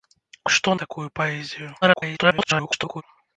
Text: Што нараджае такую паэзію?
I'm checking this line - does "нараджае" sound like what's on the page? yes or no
no